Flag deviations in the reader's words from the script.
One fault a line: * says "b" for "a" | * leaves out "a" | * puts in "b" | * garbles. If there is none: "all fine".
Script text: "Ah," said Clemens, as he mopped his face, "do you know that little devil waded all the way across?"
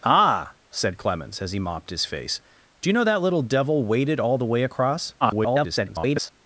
* garbles